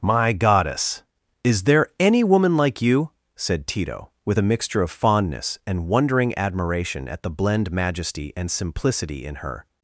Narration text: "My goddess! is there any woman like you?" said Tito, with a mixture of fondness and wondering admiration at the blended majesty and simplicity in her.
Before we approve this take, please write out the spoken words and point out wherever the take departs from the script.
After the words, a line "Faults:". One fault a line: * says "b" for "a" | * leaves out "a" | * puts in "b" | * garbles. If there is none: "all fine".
"My goddess! is there any woman like you?" said Tito, with a mixture of fondness and wondering admiration at the blend majesty and simplicity in her.
Faults:
* says "blend" for "blended"